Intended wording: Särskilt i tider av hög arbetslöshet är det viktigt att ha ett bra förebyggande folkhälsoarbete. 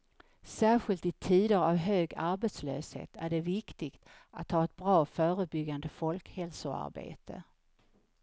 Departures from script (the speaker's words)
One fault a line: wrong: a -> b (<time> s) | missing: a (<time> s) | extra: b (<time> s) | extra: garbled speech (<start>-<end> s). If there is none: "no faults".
no faults